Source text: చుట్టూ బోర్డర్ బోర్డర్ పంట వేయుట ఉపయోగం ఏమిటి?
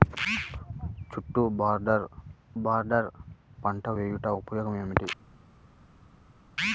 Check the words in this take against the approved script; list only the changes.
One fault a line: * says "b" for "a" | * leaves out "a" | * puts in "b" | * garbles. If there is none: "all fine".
all fine